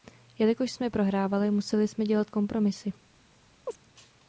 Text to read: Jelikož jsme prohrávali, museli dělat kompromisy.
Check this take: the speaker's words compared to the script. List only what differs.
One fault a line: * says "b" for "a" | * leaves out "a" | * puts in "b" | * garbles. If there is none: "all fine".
* puts in "jsme"